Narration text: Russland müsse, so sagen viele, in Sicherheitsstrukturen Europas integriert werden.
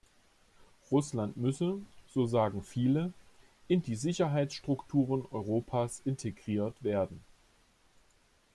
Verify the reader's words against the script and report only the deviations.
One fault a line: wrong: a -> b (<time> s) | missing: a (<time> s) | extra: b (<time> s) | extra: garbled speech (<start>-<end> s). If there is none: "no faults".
extra: die (3.8 s)